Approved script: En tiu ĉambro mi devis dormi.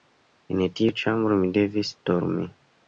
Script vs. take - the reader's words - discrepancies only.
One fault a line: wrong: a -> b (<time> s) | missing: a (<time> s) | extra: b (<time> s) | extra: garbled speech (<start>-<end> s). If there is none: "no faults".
no faults